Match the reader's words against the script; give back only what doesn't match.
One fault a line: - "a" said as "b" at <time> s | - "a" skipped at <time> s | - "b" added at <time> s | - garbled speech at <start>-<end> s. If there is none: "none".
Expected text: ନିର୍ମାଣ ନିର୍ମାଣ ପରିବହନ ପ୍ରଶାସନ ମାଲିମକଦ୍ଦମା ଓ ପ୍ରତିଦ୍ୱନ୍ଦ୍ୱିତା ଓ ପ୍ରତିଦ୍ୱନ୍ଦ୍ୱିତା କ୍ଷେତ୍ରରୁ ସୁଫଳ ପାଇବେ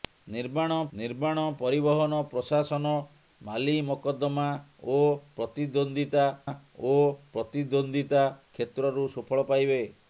none